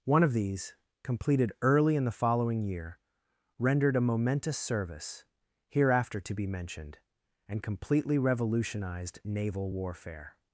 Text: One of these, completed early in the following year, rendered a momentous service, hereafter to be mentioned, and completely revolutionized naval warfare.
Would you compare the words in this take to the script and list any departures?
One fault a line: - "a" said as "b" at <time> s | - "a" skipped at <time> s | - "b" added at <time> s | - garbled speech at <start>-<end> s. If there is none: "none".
none